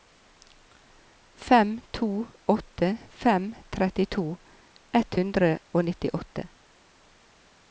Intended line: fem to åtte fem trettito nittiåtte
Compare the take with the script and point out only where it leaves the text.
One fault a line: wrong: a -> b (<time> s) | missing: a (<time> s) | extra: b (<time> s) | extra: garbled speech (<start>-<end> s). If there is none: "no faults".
extra: ett hundre og (5.0 s)